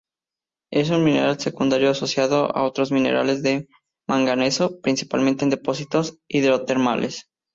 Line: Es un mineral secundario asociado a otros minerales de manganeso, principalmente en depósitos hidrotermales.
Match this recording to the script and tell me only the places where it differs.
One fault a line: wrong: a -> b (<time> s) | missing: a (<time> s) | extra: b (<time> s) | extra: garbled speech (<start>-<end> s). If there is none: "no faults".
no faults